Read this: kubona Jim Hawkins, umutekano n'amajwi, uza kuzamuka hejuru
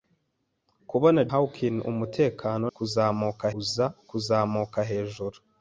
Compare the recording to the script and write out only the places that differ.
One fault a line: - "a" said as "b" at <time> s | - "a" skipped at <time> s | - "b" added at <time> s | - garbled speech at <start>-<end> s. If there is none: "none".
- "Jim" skipped at 1.2 s
- "n'amajwi" said as "kuzamuka" at 2.7 s